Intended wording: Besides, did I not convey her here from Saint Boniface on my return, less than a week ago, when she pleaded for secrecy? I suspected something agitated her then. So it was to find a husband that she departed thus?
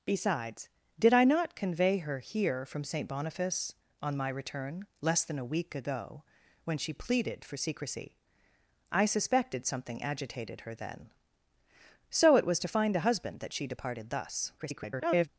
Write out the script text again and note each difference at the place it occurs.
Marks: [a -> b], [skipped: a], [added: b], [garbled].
Besides, did I not convey her here from Saint Boniface on my return, less than a week ago, when she pleaded for secrecy? I suspected something agitated her then. So it was to find a husband that she departed thus? [garbled]